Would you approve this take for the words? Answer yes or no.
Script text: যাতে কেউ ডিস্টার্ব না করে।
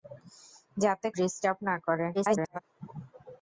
no